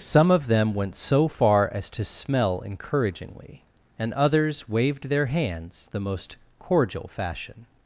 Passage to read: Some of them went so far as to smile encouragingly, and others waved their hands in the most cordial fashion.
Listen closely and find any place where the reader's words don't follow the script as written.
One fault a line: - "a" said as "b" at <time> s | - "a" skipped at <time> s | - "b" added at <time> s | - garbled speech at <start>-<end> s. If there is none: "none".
- "smile" said as "smell" at 2.0 s
- "in" skipped at 5.9 s